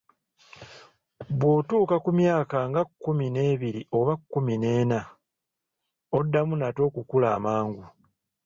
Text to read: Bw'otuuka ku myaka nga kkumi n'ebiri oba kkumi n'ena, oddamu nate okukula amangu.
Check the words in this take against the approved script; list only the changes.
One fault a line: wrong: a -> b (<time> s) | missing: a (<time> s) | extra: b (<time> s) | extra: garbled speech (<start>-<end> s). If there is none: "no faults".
no faults